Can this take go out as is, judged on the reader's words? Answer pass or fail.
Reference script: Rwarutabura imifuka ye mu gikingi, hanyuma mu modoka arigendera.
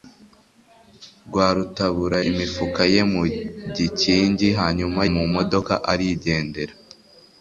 pass